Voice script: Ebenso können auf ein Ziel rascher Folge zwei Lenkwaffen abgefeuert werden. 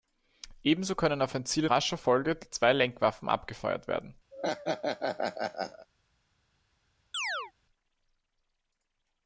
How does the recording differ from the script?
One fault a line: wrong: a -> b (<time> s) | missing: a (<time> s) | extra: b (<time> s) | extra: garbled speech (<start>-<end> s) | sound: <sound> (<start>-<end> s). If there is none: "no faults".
sound: laugh (4.3-5.9 s)
sound: chirp (7.1-7.5 s)